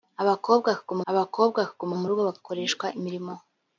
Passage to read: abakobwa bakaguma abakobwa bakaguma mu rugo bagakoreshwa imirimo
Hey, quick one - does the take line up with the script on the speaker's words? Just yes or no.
yes